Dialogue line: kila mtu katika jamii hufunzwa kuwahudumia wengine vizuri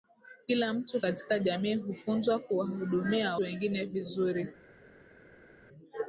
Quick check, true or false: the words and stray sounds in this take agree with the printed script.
true